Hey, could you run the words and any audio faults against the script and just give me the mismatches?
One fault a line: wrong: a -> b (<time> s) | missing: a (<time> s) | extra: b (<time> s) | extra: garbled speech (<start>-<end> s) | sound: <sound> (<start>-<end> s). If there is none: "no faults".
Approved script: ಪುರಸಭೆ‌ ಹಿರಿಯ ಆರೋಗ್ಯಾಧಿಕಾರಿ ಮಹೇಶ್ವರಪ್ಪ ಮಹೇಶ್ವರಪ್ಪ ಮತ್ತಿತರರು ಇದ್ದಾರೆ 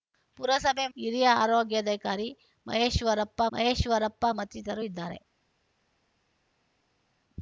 no faults